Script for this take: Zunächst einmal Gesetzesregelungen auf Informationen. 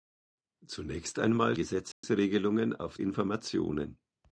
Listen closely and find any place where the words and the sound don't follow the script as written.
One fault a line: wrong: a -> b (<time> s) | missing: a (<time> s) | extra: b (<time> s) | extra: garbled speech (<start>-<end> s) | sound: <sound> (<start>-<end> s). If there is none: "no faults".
sound: dropout (1.9-2.0 s)